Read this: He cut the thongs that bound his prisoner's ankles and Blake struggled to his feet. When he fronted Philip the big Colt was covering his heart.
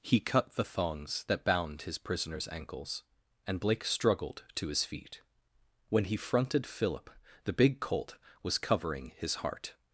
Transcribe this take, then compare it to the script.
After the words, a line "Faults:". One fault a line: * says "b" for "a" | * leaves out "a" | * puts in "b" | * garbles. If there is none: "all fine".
He cut the thongs that bound his prisoner's ankles and Blake struggled to his feet. When he fronted Philip the big Colt was covering his heart.
Faults:
all fine